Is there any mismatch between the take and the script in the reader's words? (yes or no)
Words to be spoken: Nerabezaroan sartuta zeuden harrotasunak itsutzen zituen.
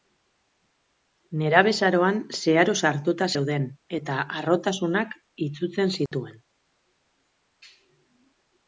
yes